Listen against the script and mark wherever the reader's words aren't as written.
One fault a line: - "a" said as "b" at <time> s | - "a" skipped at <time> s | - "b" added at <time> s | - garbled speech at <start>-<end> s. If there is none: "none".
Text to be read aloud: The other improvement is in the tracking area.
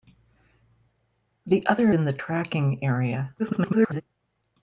- "improvement is" skipped at 1.9 s
- garbled speech at 3.4-4.0 s